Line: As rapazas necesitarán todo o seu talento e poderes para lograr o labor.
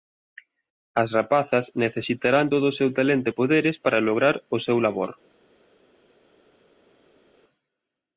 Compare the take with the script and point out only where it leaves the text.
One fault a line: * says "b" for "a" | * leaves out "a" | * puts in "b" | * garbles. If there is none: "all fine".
* puts in "seu"